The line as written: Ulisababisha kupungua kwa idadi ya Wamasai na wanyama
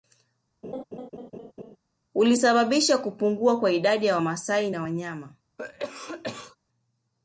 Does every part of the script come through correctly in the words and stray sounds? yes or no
no